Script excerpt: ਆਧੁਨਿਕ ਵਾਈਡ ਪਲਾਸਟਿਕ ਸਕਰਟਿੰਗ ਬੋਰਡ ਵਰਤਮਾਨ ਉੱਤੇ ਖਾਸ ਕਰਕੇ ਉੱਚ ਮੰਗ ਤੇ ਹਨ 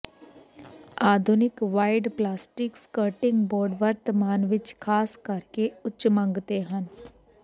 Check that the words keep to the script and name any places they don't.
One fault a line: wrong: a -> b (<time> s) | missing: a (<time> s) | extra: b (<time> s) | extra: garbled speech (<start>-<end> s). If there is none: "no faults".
wrong: ਉੱਤੇ -> ਵਿੱਚ (4.4 s)